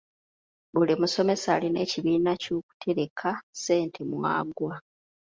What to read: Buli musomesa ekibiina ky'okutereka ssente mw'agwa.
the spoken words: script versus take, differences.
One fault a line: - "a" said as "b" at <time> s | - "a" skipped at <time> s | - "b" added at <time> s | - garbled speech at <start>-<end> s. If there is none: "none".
- "alina" added at 1.6 s